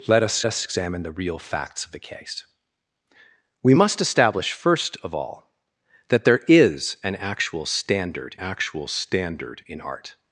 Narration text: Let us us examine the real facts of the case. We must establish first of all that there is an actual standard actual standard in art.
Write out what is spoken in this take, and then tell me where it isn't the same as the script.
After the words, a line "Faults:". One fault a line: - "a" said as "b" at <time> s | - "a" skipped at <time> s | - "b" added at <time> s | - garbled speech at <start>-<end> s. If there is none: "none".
Let us us examine the real facts of the case. We must establish first of all that there is an actual standard actual standard in art.
Faults:
none